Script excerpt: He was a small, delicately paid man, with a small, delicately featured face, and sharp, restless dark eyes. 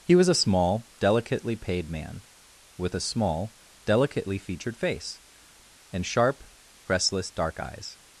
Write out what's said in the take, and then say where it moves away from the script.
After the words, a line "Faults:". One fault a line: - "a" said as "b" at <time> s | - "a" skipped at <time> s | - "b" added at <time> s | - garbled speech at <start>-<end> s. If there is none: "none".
He was a small, delicately paid man, with a small, delicately featured face, and sharp, restless dark eyes.
Faults:
none